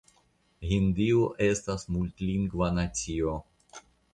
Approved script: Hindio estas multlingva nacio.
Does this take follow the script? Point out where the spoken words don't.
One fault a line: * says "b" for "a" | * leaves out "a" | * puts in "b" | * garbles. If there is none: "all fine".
all fine